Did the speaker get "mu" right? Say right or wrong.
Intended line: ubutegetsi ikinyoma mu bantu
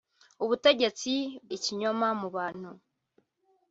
right